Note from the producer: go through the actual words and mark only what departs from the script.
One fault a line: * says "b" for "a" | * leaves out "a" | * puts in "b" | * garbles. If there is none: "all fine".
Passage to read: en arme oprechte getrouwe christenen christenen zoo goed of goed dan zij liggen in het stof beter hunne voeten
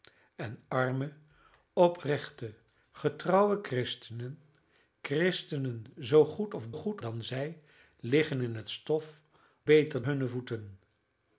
all fine